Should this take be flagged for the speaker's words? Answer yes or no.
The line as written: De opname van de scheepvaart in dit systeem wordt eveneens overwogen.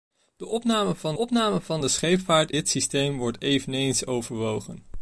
yes